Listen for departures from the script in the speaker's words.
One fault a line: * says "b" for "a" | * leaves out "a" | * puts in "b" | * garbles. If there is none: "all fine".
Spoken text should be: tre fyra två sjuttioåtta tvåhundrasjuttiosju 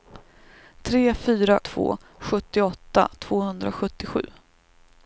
all fine